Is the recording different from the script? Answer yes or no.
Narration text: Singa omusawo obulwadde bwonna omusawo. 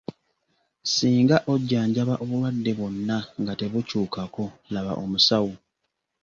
yes